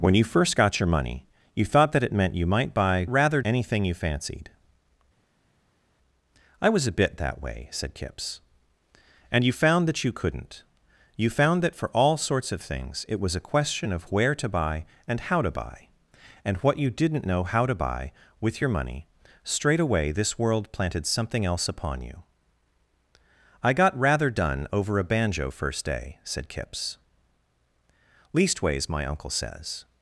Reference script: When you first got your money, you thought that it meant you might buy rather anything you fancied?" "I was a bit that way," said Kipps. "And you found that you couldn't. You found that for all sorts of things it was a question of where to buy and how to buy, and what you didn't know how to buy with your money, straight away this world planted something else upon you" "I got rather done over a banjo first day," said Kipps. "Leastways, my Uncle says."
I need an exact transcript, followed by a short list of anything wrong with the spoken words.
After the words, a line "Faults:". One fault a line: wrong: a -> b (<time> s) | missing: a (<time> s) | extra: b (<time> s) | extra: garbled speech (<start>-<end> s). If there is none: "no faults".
When you first got your money, you thought that it meant you might buy rather anything you fancied?" "I was a bit that way," said Kipps. "And you found that you couldn't. You found that for all sorts of things it was a question of where to buy and how to buy, and what you didn't know how to buy with your money, straight away this world planted something else upon you" "I got rather done over a banjo first day," said Kipps. "Leastways, my Uncle says."
Faults:
no faults